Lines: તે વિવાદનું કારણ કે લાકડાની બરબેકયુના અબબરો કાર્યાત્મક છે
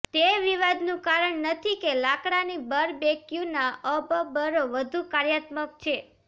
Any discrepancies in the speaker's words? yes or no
yes